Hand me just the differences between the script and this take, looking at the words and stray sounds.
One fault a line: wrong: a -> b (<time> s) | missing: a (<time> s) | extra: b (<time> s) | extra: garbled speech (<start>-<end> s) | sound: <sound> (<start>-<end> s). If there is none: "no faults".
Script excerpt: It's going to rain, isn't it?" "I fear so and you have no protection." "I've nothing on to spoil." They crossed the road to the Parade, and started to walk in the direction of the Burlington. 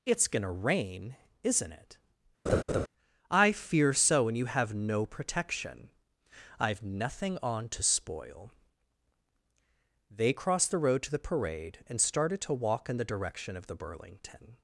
sound: laugh (2.5-2.9 s)